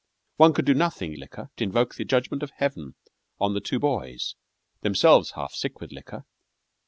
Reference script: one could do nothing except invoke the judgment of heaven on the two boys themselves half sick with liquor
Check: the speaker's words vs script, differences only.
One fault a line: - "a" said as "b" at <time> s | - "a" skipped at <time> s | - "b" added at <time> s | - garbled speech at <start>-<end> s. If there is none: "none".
- "except" said as "liquor" at 1.2 s